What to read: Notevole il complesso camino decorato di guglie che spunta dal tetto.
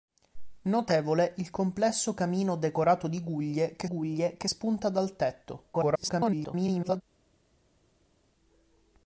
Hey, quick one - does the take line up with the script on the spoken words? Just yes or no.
no